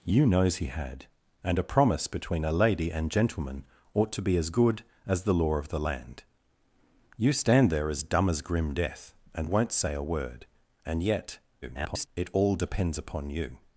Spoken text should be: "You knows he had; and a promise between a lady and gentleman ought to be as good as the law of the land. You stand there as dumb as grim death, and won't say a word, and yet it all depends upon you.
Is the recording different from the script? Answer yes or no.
yes